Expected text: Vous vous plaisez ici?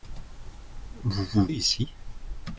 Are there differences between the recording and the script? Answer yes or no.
yes